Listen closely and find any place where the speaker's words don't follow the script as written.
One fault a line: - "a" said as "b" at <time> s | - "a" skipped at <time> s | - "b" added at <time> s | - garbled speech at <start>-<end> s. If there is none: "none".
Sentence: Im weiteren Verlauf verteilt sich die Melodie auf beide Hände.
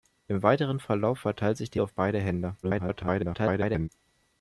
- "Melodie" skipped at 1.8 s
- garbled speech at 2.6-3.9 s